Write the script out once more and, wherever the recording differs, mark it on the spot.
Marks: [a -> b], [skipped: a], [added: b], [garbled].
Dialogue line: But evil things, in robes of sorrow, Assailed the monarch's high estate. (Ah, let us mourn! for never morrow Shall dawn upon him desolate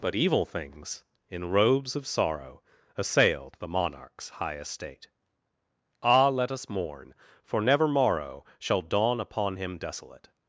But evil things, in robes of sorrow, Assailed the monarch's high estate. (Ah, let us mourn! for never morrow Shall dawn upon him desolate